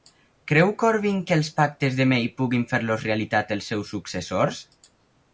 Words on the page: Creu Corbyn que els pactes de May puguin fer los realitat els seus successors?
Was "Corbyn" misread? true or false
false